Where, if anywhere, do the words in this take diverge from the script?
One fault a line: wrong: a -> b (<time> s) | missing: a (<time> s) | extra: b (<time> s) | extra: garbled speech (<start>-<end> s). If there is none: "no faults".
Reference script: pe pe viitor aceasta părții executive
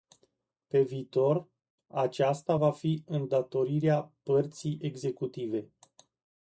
missing: pe (0.8 s)
extra: va fi îndatorirea (2.5 s)